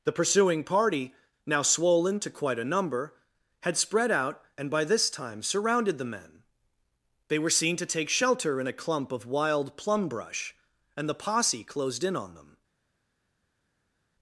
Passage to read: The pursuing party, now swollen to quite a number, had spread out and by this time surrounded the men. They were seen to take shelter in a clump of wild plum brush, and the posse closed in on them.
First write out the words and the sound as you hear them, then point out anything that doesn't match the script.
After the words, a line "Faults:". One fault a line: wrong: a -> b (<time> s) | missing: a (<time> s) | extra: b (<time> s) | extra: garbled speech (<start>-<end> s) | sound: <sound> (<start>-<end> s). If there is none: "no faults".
The pursuing party, now swollen to quite a number, had spread out and by this time surrounded the men. They were seen to take shelter in a clump of wild plum brush, and the posse closed in on them.
Faults:
no faults